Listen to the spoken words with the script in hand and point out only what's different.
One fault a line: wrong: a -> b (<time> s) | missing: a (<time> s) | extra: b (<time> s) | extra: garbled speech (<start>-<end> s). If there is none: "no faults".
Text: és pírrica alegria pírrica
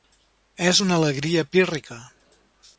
wrong: pírrica -> una (0.8 s)